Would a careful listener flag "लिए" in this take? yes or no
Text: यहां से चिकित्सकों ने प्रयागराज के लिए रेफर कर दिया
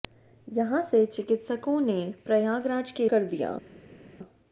yes